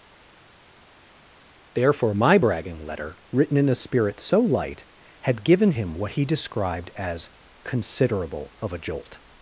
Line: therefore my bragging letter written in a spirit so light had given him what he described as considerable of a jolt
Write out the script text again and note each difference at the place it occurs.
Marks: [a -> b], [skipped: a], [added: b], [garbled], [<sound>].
therefore my bragging letter written in a spirit so light had given him what he described as considerable of a jolt